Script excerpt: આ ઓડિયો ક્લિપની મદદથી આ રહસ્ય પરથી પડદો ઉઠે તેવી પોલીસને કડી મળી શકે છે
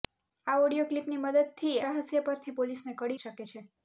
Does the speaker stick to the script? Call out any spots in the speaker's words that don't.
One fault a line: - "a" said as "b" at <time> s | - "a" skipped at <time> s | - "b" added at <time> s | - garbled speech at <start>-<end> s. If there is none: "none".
- "આ" skipped at 1.7 s
- "પડદો ઉઠે તેવી" skipped at 2.6 s
- "મળી" skipped at 3.2 s